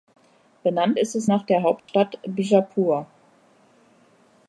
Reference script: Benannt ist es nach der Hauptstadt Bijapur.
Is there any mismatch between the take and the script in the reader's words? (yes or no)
no